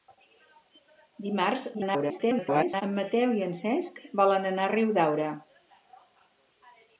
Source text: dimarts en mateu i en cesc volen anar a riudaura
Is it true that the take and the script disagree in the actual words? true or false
true